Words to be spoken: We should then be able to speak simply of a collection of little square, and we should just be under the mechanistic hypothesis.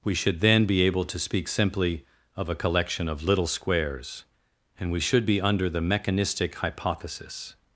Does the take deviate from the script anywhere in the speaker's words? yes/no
yes